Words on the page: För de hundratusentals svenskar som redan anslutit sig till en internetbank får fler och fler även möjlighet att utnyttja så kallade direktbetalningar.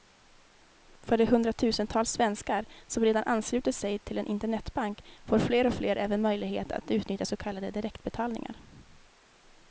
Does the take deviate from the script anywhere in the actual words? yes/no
no